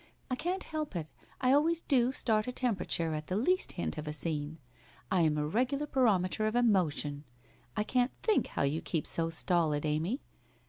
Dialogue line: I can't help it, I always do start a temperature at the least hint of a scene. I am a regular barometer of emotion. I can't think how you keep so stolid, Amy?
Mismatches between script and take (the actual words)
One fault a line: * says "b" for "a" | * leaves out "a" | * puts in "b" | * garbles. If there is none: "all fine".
all fine